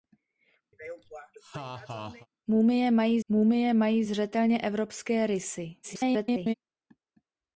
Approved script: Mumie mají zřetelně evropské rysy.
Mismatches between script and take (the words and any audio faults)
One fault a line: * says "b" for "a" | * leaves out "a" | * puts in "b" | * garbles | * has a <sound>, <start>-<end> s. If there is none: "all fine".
* has a laugh, 0.7-2.3 s
* puts in "mumie mají"
* garbles